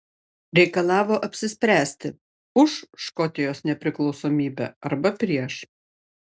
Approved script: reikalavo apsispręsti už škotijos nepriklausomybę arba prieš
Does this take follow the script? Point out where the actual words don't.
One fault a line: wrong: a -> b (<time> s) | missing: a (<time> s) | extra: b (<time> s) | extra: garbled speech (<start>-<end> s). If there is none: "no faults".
no faults